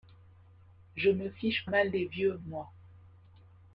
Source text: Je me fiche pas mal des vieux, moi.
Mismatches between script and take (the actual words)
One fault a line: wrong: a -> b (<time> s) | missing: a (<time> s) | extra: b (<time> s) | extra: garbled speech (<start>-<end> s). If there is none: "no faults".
missing: pas (1.7 s)